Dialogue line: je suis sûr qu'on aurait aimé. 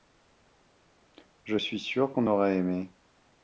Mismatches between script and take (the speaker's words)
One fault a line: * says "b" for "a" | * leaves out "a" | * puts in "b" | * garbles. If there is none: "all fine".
all fine